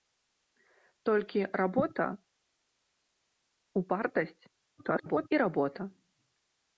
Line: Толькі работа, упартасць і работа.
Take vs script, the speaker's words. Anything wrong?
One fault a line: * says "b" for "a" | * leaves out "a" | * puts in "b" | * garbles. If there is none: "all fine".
* garbles